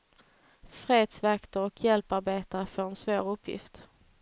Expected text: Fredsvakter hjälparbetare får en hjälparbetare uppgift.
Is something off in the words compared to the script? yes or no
yes